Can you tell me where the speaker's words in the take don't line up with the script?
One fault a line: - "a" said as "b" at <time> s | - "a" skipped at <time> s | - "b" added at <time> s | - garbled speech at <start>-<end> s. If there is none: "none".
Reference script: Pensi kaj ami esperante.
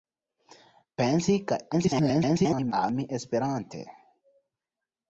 - garbled speech at 1.7-2.7 s